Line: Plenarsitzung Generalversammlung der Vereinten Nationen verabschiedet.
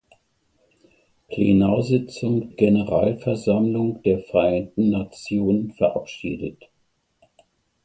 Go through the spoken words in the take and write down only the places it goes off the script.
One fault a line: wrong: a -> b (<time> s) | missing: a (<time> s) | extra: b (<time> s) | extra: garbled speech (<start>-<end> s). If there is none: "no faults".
no faults